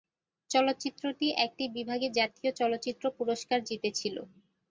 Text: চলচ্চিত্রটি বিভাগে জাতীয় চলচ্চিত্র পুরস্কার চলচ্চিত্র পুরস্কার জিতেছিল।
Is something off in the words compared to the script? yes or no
yes